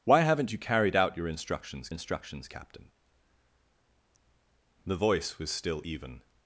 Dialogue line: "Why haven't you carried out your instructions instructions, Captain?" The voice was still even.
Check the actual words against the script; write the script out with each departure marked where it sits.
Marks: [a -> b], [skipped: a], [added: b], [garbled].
"Why haven't you carried out your instructions instructions, Captain?" The voice was still even.